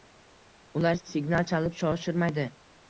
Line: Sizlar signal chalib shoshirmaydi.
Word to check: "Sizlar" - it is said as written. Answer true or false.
false